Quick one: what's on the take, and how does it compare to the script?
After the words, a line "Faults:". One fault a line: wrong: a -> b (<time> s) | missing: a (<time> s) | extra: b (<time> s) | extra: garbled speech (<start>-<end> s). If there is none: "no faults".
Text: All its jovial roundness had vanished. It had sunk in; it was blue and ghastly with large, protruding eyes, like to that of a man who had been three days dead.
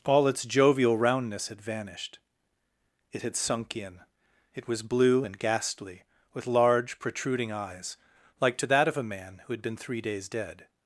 All its jovial roundness had vanished. It had sunk in; it was blue and ghastly with large, protruding eyes, like to that of a man who had been three days dead.
Faults:
no faults